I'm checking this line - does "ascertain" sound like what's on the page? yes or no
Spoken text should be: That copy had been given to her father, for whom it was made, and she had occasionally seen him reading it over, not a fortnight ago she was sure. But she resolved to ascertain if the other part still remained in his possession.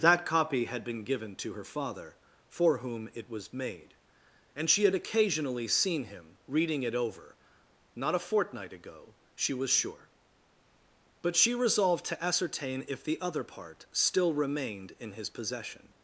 yes